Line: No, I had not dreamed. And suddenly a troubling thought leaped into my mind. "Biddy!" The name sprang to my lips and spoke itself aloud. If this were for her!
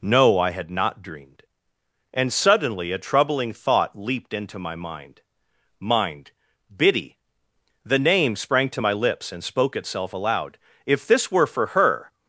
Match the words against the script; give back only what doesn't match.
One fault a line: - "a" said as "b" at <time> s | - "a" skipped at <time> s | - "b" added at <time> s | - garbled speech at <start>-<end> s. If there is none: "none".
- "mind" added at 5.8 s